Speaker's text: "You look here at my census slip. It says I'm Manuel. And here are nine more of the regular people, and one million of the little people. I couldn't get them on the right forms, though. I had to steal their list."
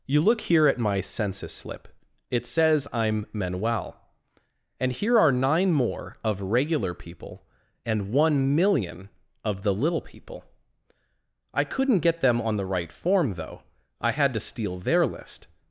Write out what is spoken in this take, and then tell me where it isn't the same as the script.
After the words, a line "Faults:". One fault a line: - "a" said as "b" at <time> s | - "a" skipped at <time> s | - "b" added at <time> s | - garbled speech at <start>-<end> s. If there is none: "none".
"You look here at my census slip. It says I'm Manuel. And here are nine more of regular people, and one million of the little people. I couldn't get them on the right form, though. I had to steal their list."
Faults:
- "the" skipped at 6.4 s
- "forms" said as "form" at 12.9 s